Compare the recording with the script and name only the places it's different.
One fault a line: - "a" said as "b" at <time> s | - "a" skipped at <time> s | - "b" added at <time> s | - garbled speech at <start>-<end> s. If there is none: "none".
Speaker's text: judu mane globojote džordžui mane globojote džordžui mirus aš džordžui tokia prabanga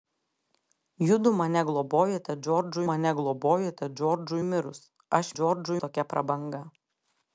none